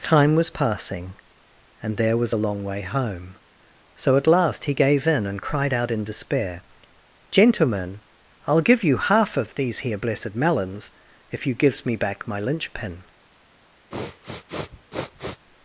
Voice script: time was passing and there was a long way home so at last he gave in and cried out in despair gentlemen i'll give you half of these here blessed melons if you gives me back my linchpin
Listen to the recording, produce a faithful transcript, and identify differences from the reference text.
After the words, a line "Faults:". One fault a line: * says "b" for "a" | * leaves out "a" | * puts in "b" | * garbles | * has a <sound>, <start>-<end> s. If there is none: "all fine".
time was passing and there was a long way home so at last he gave in and cried out in despair gentlemen i'll give you half of these here blessed melons if you gives me back my linchpin
Faults:
* has a sniff, 13.9-15.4 s